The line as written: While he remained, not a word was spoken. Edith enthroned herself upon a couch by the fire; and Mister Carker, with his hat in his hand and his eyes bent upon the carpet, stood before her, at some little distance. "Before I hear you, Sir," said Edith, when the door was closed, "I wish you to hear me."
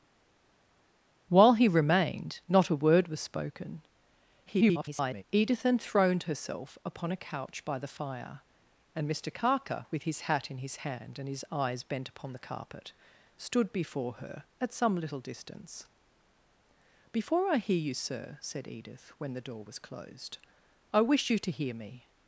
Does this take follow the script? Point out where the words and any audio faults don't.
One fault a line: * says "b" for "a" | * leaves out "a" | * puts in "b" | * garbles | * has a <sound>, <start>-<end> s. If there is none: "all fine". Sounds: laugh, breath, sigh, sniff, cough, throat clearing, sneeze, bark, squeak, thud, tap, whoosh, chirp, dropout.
* garbles